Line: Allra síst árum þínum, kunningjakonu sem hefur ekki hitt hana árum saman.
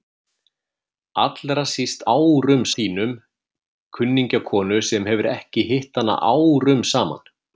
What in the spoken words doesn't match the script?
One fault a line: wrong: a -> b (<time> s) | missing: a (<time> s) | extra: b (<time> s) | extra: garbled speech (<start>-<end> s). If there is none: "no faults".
no faults